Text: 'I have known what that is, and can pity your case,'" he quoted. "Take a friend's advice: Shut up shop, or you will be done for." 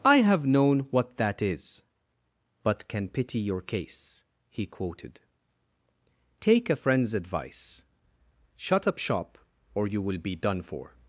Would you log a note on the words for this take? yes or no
yes